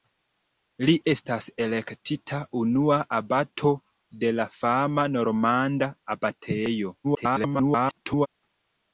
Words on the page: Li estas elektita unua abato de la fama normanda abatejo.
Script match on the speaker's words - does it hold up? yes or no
no